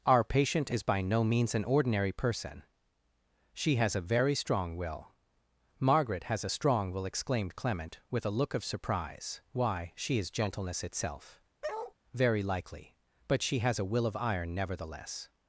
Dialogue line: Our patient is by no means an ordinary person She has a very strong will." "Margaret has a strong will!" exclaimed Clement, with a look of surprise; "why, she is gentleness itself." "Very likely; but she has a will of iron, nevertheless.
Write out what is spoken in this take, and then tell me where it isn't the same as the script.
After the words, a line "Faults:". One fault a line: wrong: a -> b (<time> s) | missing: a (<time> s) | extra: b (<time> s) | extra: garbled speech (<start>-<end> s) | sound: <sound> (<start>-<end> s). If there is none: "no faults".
Our patient is by no means an ordinary person She has a very strong will." "Margaret has a strong will!" exclaimed Clement, with a look of surprise; "why, she is gentleness itself." "Very likely; but she has a will of iron, nevertheless.
Faults:
sound: bark (11.6-11.9 s)